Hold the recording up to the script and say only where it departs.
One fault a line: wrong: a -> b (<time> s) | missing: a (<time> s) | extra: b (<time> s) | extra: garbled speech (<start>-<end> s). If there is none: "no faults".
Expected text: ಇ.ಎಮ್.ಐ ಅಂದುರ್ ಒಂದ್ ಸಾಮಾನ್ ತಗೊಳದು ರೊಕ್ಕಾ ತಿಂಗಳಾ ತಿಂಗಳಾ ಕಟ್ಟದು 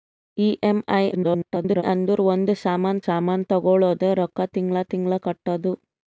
extra: garbled speech (1.1-1.8 s)
extra: ಸಾಮಾನ್ (3.0 s)